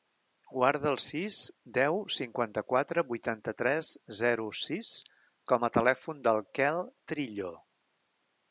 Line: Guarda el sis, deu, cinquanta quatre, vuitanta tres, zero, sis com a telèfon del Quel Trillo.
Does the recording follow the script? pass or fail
pass